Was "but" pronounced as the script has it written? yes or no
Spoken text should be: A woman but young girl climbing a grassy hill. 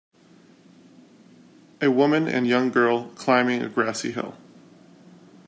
no